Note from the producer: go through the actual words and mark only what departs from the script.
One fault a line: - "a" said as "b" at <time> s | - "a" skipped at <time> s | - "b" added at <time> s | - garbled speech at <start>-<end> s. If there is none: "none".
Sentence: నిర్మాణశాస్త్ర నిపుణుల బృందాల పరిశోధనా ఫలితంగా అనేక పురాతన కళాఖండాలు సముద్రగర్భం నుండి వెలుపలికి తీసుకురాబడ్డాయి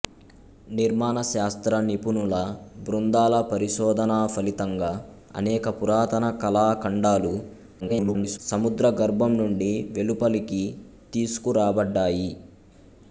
- garbled speech at 7.8-8.4 s